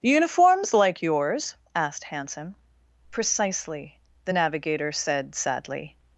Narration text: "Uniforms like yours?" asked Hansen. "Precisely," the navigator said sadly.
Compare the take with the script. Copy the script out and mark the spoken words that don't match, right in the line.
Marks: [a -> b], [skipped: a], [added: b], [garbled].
"Uniforms like yours?" asked Hansen. "Precisely," the navigator said sadly.